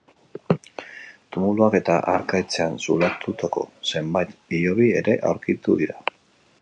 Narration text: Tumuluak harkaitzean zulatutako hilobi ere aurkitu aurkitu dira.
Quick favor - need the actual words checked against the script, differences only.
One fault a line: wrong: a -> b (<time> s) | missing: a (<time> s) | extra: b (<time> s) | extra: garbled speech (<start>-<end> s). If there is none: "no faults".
extra: eta (1.8 s)
extra: zenbait (3.9 s)
missing: aurkitu (5.8 s)